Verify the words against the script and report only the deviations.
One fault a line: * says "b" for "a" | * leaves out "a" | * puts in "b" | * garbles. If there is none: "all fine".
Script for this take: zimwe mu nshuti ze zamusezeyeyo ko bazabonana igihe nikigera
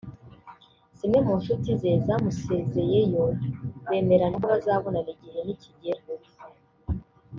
* puts in "bemeranya"